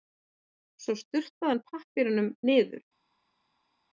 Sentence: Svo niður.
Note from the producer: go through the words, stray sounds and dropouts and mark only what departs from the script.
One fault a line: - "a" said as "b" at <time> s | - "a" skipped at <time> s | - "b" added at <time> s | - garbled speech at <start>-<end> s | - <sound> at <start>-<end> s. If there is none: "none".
- "sturtaði hann pappírnum" added at 1.0 s